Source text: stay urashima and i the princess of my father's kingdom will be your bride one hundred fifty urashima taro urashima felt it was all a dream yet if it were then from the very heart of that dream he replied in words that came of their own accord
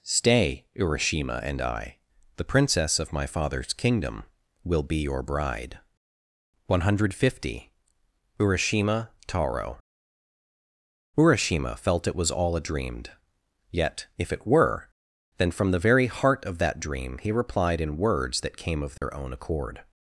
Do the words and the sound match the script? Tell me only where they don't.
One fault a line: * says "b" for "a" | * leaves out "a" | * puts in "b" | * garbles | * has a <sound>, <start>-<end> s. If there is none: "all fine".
* has a dropout, 19.0-19.0 s